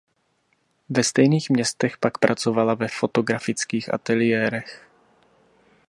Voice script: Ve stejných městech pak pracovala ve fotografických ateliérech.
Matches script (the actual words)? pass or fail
pass